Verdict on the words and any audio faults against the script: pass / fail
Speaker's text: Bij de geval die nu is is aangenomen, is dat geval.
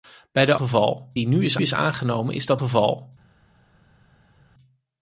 pass